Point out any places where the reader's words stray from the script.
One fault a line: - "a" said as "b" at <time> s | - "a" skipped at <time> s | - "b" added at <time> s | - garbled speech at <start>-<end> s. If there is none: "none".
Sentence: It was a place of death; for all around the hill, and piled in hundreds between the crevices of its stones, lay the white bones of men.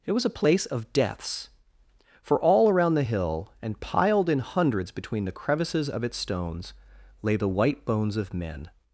- "death" said as "deaths" at 0.9 s